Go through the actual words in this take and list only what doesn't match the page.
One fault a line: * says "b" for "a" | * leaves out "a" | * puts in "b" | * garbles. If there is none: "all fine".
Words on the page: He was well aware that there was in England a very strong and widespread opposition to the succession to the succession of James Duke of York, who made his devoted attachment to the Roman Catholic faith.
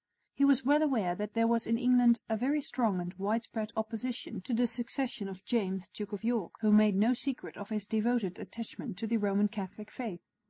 * leaves out "to the succession"
* puts in "no secret of"